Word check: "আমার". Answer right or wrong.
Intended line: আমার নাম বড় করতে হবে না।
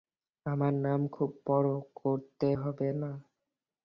right